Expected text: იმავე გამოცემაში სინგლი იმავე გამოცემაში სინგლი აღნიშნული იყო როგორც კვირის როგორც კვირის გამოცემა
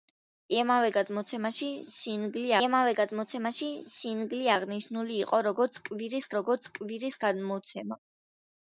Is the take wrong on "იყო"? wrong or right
right